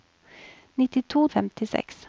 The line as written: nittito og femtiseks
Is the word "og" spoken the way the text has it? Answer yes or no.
yes